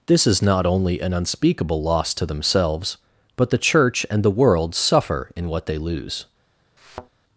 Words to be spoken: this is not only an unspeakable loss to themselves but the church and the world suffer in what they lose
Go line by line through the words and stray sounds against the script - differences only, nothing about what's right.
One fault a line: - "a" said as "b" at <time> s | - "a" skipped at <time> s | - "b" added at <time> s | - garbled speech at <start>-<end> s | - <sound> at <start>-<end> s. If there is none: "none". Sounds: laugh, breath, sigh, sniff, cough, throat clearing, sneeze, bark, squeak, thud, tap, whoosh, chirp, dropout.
- thud at 6.8-7.1 s